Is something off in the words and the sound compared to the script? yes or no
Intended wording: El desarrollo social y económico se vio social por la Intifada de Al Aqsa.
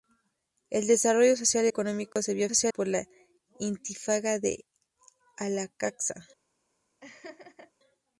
yes